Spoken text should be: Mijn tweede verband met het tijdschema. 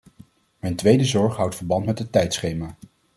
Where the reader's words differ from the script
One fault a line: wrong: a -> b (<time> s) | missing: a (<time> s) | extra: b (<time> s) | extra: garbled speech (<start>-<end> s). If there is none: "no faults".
extra: zorg houdt (1.1 s)